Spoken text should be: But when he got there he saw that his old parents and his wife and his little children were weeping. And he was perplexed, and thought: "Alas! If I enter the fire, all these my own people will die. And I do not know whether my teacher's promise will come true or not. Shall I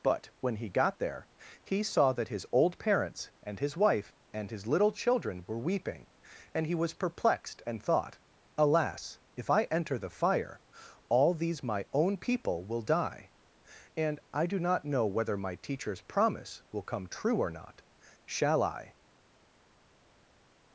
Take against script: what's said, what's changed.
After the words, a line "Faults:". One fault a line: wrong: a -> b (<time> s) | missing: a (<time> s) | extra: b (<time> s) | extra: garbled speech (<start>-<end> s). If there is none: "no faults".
But when he got there he saw that his old parents and his wife and his little children were weeping. And he was perplexed, and thought: "Alas! If I enter the fire, all these my own people will die. And I do not know whether my teacher's promise will come true or not. Shall I
Faults:
no faults